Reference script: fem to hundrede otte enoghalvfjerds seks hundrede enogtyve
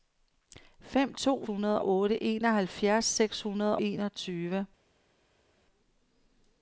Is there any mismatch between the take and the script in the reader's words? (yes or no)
no